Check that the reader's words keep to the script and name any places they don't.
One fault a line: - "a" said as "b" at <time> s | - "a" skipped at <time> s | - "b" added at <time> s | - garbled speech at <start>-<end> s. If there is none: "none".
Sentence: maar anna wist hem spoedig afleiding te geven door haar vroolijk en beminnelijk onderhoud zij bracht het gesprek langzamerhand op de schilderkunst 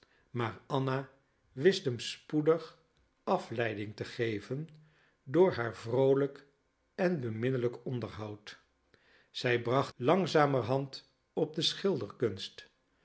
- "het gesprek" skipped at 9.9 s